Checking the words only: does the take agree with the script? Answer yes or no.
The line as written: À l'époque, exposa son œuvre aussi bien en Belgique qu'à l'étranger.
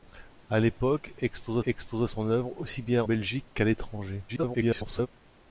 no